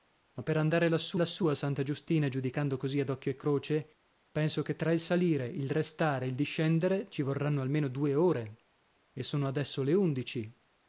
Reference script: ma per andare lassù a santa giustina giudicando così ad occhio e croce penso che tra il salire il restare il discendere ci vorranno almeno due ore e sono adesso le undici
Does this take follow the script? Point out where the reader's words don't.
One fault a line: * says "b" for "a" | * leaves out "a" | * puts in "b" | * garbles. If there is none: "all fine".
* puts in "lassù"